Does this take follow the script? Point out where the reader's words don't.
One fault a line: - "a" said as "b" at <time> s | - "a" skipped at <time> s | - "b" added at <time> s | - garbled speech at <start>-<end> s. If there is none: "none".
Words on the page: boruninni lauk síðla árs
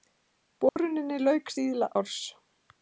none